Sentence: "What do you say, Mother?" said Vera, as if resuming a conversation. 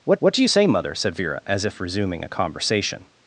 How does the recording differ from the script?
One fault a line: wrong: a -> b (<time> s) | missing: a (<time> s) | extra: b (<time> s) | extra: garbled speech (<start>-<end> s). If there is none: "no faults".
extra: what (0.2 s)